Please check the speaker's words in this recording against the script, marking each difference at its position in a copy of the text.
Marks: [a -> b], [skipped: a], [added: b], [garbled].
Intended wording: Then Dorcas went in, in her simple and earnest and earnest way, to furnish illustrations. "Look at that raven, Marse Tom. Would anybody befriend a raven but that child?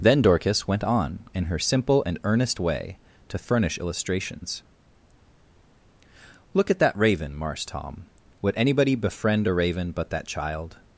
Then Dorcas went [in, -> on] in her simple and earnest [skipped: and earnest] way, to furnish illustrations. "Look at that raven, Marse Tom. Would anybody befriend a raven but that child?